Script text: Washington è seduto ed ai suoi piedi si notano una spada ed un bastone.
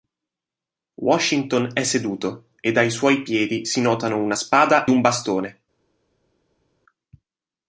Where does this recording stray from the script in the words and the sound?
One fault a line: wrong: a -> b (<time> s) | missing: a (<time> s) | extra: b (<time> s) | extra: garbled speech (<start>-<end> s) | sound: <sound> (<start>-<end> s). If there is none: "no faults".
missing: ed (4.8 s)